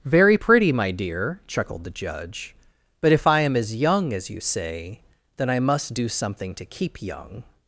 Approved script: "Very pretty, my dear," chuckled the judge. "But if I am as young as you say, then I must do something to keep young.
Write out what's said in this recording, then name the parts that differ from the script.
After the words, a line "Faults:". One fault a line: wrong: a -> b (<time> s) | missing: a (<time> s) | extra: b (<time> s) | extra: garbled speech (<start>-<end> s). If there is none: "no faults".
"Very pretty, my dear," chuckled the judge. "But if I am as young as you say, then I must do something to keep young.
Faults:
no faults